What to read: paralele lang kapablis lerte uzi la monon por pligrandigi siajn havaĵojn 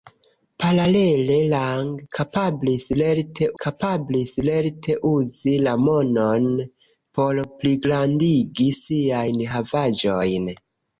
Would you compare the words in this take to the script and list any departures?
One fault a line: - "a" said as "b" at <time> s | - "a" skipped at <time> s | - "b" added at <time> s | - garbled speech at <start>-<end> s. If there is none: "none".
- "kapablis lerte" added at 3.6 s